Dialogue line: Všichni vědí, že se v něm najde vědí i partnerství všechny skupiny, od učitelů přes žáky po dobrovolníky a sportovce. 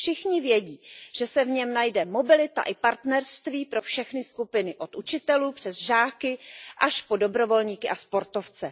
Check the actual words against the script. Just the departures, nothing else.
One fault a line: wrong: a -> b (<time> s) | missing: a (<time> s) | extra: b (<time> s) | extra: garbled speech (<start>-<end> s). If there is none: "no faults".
wrong: vědí -> mobilita (2.0 s)
extra: pro (3.7 s)
extra: až (6.8 s)